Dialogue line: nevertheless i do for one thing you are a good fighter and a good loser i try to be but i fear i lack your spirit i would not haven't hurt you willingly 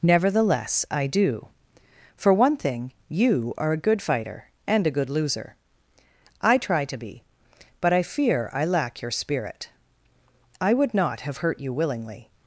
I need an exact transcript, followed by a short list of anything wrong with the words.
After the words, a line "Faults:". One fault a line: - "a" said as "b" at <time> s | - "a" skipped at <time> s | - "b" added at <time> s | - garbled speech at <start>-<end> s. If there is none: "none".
nevertheless i do for one thing you are a good fighter and a good loser i try to be but i fear i lack your spirit i would not have hurt you willingly
Faults:
- "haven't" said as "have" at 11.2 s